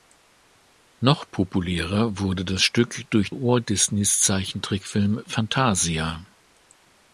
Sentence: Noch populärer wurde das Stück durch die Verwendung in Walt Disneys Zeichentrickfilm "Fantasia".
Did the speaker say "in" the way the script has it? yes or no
no